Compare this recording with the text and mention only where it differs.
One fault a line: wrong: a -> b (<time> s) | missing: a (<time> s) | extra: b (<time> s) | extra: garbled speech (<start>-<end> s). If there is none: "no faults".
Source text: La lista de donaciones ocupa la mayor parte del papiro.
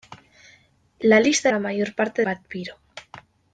missing: de donaciones ocupa (1.5 s)
missing: del (2.2 s)